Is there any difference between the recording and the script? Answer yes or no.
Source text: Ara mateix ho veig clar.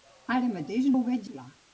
no